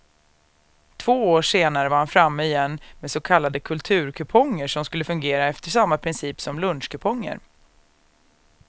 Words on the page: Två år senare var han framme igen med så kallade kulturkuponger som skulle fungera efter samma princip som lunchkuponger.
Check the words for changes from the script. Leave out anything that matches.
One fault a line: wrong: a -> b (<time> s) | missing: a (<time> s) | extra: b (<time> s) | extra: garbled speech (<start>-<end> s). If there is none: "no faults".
no faults